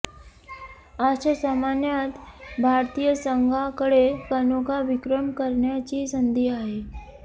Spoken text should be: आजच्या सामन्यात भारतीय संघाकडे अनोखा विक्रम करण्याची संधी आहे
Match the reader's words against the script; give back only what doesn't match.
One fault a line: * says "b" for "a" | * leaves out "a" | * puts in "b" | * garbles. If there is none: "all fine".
all fine